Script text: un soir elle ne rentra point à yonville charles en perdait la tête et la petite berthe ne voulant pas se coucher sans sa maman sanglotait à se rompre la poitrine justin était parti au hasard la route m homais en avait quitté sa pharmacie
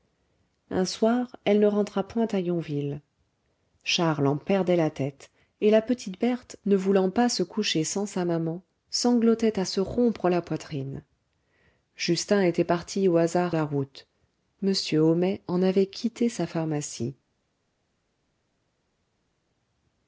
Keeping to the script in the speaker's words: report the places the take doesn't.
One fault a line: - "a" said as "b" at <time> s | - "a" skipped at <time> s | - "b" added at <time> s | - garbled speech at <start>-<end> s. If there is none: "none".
none